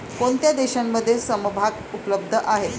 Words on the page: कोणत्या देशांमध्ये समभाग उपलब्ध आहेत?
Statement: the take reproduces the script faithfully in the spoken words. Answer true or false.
true